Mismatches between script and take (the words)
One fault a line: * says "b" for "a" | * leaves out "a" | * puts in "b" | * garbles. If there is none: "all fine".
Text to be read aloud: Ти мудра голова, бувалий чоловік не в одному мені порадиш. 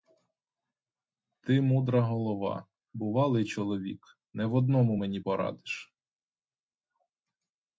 all fine